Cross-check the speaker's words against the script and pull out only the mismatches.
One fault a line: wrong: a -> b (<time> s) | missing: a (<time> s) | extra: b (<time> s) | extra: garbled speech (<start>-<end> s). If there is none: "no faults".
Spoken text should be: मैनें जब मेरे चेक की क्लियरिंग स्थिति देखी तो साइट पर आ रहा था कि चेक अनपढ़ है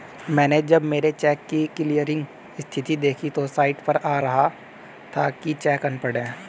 no faults